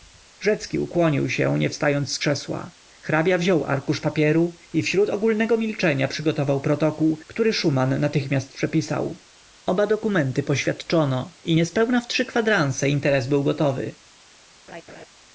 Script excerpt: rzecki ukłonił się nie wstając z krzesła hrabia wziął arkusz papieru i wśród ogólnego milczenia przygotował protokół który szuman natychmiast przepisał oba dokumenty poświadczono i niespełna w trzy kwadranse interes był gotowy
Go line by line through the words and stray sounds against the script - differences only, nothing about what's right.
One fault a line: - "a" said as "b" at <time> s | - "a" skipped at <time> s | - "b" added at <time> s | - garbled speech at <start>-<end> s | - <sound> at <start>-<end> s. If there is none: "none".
- laugh at 14.7-15.1 s